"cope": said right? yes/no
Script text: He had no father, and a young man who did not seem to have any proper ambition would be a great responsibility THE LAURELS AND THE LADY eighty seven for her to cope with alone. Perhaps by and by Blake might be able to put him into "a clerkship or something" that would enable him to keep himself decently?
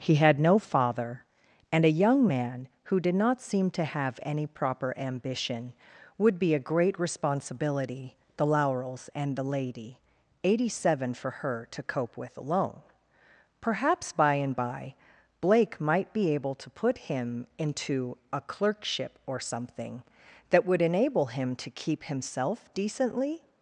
yes